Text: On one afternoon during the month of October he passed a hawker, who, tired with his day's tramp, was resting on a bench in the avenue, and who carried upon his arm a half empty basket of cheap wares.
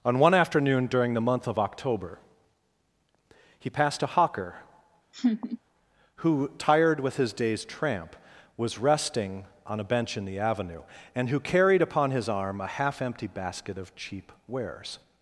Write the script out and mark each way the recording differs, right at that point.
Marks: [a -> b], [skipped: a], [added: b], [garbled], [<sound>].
On one afternoon during the month of October he passed a hawker, [laugh] who, tired with his day's tramp, was resting on a bench in the avenue, and who carried upon his arm a half empty basket of cheap wares.